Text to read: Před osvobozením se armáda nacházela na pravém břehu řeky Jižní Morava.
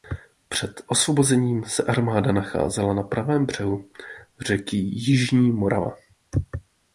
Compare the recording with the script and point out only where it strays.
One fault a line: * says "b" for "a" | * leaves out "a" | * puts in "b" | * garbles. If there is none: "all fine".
all fine